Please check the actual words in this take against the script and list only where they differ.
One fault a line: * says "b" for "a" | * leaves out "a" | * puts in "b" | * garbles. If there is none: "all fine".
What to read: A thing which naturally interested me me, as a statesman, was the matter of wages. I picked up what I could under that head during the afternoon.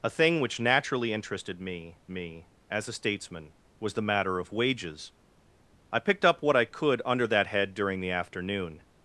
all fine